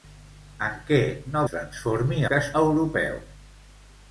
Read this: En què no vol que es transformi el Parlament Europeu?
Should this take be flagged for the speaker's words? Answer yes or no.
yes